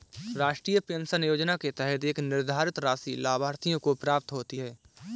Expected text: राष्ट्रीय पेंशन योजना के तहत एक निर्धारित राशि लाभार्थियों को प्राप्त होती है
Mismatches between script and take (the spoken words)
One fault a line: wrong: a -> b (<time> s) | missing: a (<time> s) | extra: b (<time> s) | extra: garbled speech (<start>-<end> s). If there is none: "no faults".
no faults